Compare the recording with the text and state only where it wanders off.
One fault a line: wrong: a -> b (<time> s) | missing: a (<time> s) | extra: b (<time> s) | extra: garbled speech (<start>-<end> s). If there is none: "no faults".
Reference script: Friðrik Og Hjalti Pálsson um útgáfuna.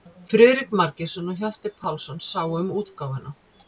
extra: Margeirsson (0.8 s)
extra: sáu (2.3 s)